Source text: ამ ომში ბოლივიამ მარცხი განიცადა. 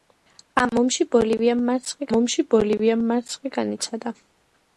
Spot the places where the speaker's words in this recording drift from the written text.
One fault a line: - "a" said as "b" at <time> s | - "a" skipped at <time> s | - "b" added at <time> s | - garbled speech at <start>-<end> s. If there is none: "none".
- "ომში ბოლივიამ მარცხი" added at 2.2 s